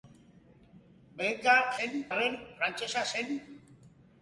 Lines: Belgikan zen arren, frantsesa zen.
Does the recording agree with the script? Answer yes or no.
yes